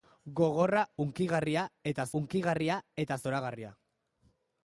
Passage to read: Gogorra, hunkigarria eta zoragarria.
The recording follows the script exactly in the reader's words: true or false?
false